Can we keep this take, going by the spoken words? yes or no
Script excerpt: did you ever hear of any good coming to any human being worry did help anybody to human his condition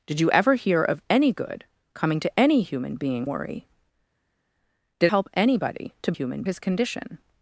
yes